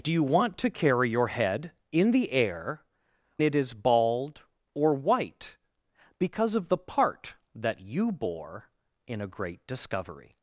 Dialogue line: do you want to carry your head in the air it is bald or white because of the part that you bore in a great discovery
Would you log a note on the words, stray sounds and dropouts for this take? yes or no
no